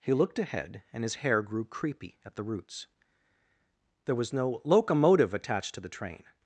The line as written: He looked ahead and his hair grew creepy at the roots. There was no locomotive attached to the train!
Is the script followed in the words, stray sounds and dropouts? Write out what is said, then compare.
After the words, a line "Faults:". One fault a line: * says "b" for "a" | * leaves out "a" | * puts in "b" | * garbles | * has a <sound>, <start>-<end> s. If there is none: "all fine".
He looked ahead and his hair grew creepy at the roots. There was no locomotive attached to the train!
Faults:
all fine